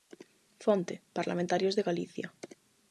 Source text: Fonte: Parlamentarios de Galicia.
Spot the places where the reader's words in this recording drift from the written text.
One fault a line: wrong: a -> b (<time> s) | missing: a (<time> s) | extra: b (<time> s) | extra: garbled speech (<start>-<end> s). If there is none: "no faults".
no faults